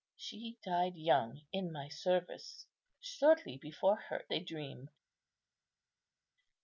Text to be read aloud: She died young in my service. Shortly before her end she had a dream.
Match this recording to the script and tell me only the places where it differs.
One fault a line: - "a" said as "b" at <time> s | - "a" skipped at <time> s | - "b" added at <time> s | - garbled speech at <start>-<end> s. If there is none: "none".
- "end she had" skipped at 4.2 s